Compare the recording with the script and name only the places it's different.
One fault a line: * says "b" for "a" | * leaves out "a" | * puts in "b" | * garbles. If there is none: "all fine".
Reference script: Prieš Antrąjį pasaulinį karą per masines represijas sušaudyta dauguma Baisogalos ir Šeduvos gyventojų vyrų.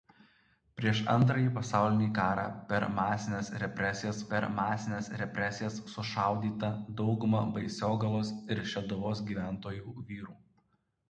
* puts in "per masines represijas"